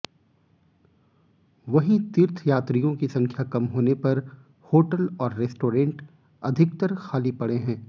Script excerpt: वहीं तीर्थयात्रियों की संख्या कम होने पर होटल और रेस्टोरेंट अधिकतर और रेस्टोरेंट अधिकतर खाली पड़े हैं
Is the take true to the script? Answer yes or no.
no